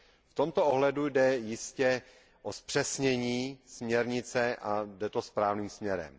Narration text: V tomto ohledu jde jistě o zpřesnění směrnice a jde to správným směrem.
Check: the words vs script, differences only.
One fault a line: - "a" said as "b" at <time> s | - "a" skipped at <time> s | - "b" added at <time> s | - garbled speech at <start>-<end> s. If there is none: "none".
none